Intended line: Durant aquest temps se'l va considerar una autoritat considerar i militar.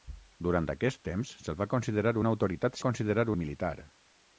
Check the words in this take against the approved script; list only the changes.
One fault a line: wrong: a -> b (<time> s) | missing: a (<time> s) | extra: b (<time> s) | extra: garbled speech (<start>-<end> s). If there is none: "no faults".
no faults